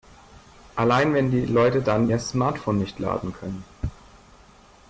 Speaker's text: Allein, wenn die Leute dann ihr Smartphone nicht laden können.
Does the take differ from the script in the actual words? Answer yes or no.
no